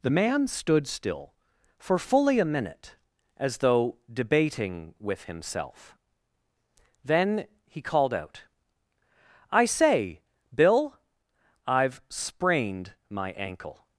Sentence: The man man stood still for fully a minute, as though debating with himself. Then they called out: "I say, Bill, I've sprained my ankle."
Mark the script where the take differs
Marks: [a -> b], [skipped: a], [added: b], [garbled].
The man [skipped: man] stood still for fully a minute, as though debating with himself. Then [they -> he] called out: "I say, Bill, I've sprained my ankle."